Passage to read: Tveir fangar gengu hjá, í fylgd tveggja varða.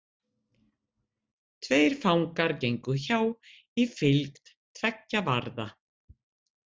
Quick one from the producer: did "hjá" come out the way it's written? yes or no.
yes